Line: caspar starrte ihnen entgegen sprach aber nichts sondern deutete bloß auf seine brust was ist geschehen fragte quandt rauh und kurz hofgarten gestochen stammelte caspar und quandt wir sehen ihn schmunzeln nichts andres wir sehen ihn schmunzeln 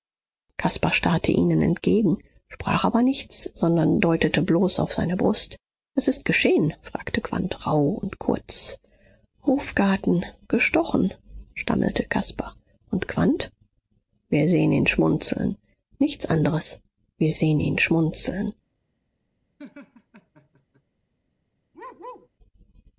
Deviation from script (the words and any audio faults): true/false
true